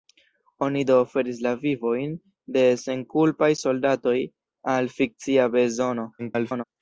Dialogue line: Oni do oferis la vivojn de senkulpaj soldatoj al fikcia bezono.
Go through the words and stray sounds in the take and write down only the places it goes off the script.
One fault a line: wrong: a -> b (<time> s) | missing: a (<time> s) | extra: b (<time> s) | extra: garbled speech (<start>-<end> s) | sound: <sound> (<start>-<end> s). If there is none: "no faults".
extra: garbled speech (6.2-6.6 s)